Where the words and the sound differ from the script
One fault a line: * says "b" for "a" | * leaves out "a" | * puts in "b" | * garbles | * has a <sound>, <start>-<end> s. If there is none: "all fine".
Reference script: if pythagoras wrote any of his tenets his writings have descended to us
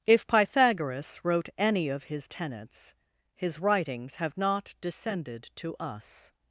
* puts in "not"